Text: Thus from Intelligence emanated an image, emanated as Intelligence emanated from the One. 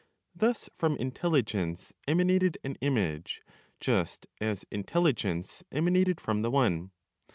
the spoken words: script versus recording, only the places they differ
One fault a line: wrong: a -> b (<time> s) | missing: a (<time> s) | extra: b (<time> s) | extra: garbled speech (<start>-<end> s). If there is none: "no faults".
wrong: emanated -> just (3.8 s)